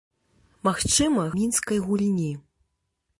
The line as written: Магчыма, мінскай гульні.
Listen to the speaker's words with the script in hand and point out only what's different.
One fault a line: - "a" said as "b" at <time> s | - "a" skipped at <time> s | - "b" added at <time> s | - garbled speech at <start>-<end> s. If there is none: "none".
none